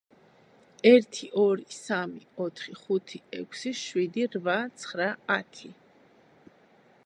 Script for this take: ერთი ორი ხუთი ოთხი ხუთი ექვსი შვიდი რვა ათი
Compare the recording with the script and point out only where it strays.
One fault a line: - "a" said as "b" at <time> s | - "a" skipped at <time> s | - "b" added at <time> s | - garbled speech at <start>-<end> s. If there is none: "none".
- "ხუთი" said as "სამი" at 1.8 s
- "ცხრა" added at 4.8 s